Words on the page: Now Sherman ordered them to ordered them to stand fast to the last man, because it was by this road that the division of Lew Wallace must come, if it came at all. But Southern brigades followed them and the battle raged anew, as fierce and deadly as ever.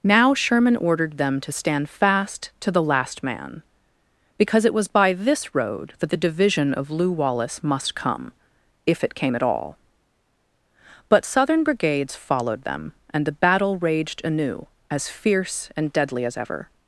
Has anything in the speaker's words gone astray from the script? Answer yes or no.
yes